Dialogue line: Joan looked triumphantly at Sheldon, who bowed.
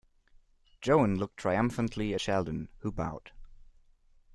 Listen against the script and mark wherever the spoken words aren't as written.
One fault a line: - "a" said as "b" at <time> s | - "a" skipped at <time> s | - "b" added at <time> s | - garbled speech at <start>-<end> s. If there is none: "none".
- "at" skipped at 2.1 s